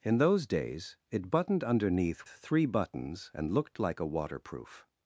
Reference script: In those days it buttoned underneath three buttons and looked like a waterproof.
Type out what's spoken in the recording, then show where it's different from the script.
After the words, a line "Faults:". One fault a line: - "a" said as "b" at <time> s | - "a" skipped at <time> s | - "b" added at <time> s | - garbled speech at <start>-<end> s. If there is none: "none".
In those days it buttoned underneath three buttons and looked like a waterproof.
Faults:
none